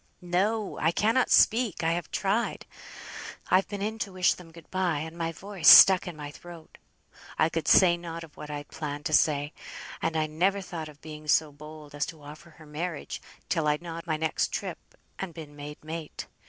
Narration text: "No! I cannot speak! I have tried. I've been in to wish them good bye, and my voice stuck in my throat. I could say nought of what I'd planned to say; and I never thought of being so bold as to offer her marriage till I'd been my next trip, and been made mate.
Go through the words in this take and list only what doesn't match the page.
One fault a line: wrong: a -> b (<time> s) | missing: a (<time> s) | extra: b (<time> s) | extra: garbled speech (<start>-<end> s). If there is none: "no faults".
wrong: been -> nought (13.8 s)